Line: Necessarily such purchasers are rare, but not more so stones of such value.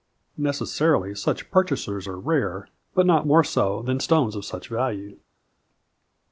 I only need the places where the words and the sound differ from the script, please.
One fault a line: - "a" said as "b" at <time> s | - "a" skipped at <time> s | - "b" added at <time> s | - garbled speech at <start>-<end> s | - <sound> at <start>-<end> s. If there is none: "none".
- "than" added at 3.8 s